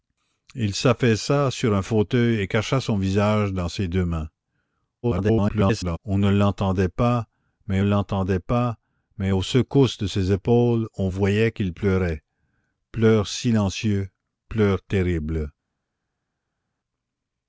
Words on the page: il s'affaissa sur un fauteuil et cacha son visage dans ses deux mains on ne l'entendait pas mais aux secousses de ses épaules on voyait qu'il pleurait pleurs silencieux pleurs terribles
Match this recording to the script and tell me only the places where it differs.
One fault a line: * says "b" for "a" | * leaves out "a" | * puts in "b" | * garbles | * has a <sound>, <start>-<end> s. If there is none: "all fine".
* garbles
* puts in "l'entendait pas mais"